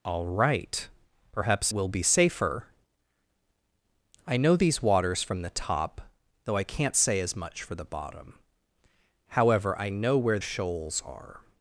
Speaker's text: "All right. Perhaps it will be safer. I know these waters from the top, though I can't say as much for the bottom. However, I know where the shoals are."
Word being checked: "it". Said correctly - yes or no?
no